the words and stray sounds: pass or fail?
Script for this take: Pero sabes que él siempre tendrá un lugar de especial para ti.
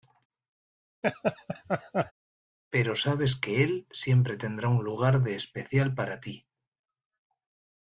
fail